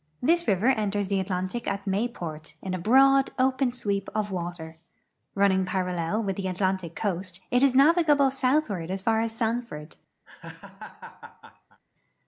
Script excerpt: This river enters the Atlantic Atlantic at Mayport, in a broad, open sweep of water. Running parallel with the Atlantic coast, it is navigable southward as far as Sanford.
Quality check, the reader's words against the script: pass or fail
fail